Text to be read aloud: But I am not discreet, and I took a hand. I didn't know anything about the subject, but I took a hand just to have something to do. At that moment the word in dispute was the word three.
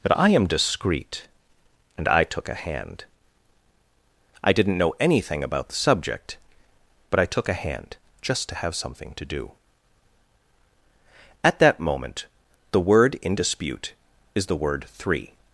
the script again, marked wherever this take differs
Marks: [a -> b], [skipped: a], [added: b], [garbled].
But I am [skipped: not] discreet, and I took a hand. I didn't know anything about the subject, but I took a hand just to have something to do. At that moment the word in dispute [was -> is] the word three.